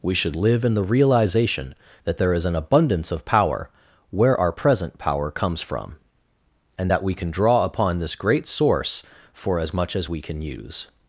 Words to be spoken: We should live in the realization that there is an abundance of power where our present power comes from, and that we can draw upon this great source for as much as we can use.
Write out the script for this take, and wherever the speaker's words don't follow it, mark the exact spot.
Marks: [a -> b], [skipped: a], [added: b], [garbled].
We should live in the realization that there is an abundance of power where our present power comes from, and that we can draw upon this great source for as much as we can use.